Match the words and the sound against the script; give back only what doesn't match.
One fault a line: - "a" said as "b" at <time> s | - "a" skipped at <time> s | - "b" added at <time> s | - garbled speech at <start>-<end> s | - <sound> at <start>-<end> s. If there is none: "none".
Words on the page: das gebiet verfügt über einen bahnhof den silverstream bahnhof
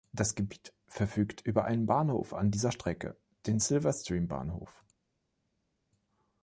- "an dieser strecke" added at 2.3 s